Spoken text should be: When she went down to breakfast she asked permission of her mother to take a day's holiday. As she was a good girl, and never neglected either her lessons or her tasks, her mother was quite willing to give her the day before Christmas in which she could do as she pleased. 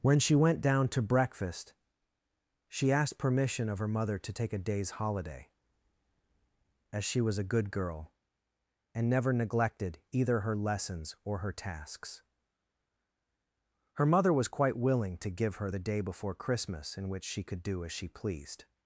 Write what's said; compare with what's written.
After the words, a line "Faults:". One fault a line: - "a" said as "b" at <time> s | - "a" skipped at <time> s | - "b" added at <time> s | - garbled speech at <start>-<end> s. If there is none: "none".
When she went down to breakfast she asked permission of her mother to take a day's holiday. As she was a good girl, and never neglected either her lessons or her tasks, her mother was quite willing to give her the day before Christmas in which she could do as she pleased.
Faults:
none